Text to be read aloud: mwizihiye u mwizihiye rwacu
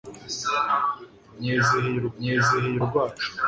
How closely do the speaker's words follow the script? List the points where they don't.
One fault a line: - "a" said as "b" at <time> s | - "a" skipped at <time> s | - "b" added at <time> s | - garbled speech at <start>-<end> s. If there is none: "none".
none